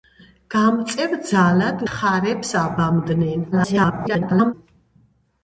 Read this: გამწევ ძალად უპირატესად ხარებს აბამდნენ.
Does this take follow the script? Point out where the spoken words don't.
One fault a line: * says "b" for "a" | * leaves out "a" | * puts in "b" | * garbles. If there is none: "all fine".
* leaves out "უპირატესად"
* garbles